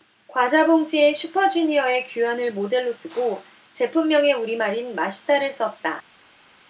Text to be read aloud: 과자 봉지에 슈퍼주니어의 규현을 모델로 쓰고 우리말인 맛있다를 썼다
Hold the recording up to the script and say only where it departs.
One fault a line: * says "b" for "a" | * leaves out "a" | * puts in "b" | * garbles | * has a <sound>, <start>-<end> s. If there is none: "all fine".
* puts in "제품명에"